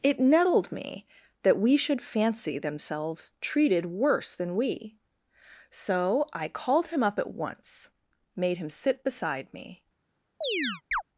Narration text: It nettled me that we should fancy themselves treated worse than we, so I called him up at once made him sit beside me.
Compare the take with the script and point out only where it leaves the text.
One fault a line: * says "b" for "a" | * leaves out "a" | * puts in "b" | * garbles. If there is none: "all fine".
all fine